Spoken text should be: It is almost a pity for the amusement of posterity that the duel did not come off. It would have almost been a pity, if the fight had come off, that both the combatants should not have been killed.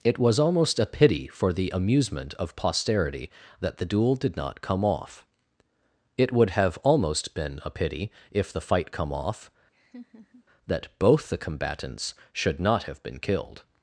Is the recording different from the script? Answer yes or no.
yes